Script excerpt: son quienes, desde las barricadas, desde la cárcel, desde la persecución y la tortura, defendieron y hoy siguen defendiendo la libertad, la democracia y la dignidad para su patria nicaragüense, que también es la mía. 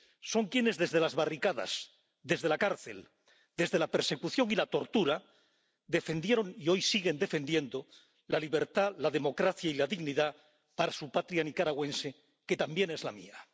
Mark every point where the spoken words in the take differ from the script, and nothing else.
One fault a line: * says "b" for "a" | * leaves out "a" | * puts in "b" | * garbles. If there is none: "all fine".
all fine